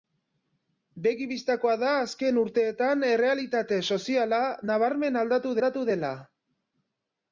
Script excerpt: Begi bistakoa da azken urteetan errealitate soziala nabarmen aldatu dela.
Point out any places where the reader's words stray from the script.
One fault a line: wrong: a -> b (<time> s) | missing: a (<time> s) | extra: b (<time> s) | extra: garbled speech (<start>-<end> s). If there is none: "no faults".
extra: aldatu (5.6 s)